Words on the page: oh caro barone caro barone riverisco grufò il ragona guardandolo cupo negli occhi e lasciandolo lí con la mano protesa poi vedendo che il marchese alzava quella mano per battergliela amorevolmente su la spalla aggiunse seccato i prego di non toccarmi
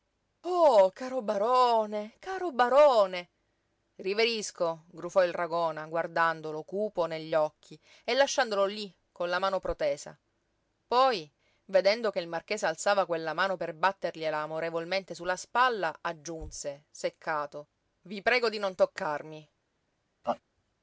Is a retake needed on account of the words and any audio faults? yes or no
yes